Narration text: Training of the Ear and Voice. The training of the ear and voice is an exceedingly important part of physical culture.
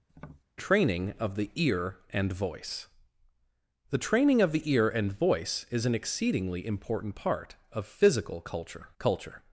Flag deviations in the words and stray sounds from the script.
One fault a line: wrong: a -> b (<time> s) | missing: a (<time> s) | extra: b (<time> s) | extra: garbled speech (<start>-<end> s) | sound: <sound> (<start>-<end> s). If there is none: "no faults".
sound: tap (0.1-0.4 s)
extra: culture (9.0 s)